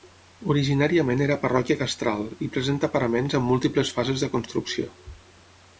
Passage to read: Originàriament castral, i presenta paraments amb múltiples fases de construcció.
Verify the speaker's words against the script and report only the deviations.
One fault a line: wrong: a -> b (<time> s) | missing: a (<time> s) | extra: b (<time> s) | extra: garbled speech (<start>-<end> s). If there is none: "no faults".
extra: era parròquia (1.2 s)